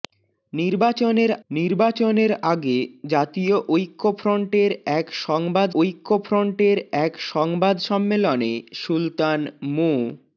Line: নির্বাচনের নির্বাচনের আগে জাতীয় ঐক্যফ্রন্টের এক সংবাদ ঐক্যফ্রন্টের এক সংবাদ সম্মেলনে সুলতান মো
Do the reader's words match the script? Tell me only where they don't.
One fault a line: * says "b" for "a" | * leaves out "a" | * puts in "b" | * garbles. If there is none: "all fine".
all fine